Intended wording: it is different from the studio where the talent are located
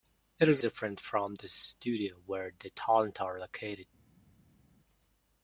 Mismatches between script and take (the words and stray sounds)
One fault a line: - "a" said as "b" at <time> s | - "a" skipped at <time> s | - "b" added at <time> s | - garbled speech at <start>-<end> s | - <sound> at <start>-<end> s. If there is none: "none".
none